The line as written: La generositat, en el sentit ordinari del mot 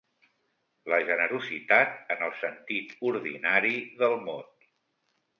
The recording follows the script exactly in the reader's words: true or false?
true